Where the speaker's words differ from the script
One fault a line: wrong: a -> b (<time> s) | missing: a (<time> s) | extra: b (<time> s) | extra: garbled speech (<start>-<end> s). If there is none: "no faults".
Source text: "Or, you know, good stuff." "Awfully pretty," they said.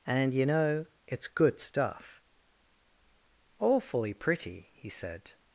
wrong: Or -> And (0.1 s)
extra: it's (1.1 s)
wrong: they -> he (4.7 s)